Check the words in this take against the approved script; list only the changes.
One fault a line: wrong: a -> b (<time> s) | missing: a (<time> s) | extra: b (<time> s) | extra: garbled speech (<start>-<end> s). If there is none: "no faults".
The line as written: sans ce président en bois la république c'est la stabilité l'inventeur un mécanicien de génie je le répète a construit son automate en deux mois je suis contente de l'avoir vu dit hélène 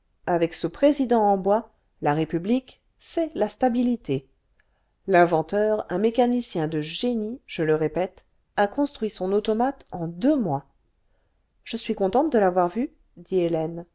wrong: sans -> avec (0.2 s)